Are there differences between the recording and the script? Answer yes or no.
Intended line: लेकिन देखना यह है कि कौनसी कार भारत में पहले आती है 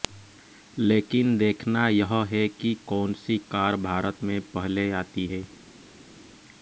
no